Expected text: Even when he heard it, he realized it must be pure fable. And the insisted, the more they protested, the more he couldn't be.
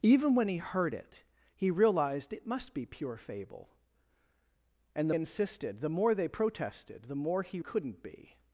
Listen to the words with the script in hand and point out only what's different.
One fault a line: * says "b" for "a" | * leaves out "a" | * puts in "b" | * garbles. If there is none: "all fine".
all fine